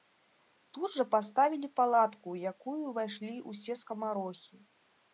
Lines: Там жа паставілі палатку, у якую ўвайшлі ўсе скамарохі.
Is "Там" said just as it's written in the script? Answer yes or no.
no